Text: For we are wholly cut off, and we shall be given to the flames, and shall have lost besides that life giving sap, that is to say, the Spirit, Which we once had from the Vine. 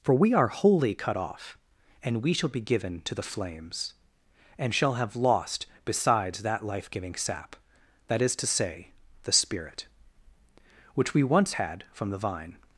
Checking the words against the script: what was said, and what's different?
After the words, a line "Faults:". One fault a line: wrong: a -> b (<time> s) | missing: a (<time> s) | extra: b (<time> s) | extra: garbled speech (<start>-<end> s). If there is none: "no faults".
For we are wholly cut off, and we shall be given to the flames, and shall have lost besides that life giving sap, that is to say, the Spirit, Which we once had from the Vine.
Faults:
no faults